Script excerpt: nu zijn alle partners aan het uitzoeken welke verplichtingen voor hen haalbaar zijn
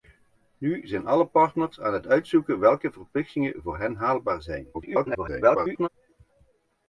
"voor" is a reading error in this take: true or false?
false